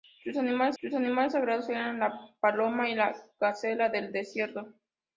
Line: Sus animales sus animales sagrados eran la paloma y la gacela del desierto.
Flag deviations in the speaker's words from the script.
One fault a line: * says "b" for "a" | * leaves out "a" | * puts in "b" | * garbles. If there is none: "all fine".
all fine